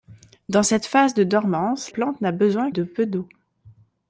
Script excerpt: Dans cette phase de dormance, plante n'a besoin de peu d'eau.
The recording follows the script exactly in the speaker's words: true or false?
true